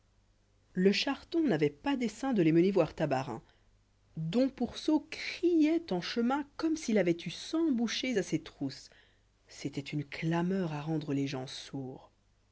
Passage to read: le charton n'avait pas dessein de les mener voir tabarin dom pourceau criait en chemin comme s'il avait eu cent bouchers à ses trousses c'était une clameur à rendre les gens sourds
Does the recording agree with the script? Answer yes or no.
yes